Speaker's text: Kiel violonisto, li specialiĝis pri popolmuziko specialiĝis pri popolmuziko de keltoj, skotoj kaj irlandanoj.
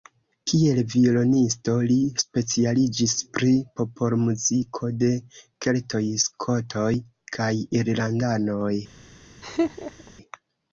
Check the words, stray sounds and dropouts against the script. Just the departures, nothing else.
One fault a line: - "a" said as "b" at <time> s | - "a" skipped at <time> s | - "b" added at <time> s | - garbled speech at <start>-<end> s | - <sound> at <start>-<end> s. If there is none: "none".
- "specialiĝis pri popolmuziko" skipped at 4.9 s
- laugh at 9.4-10.1 s